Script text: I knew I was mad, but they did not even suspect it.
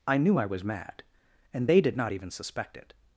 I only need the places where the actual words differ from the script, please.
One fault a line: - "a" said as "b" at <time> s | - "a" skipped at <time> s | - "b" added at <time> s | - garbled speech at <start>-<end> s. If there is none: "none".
- "but" said as "and" at 1.5 s